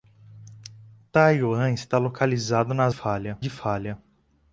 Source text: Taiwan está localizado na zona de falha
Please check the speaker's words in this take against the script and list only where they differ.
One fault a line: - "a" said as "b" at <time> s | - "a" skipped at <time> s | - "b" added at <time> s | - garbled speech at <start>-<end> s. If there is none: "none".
- "zona" said as "falha" at 2.9 s